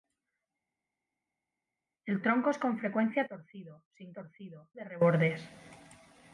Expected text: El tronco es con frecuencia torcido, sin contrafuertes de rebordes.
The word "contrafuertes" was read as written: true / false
false